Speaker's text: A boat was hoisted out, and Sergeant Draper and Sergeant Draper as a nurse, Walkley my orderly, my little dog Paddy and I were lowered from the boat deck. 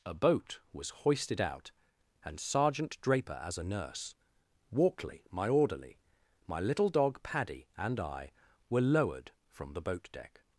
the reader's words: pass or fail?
fail